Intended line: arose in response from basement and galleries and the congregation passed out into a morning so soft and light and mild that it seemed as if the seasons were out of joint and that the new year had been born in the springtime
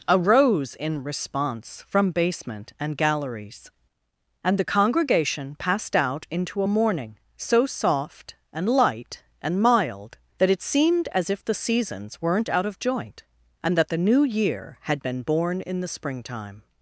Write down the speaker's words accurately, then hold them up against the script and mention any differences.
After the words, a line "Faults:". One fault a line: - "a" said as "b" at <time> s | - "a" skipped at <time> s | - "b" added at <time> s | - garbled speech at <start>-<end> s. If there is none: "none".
arose in response from basement and galleries and the congregation passed out into a morning so soft and light and mild that it seemed as if the seasons weren't out of joint and that the new year had been born in the springtime
Faults:
- "were" said as "weren't" at 12.2 s